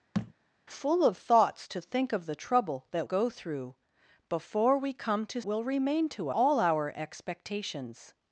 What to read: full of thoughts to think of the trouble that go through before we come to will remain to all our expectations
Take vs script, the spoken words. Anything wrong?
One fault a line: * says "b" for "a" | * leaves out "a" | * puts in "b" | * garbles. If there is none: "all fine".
all fine